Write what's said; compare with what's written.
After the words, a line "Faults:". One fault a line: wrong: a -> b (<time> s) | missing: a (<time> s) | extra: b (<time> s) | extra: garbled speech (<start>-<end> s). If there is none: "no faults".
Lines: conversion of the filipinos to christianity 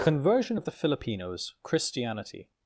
conversion of the filipinos christianity
Faults:
missing: to (1.5 s)